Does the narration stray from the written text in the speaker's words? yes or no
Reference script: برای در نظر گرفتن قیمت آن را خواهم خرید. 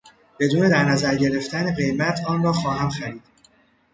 yes